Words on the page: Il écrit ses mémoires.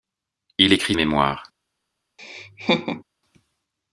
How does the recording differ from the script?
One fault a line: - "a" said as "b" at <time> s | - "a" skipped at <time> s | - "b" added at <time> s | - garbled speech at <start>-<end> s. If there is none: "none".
- "ses" skipped at 1.0 s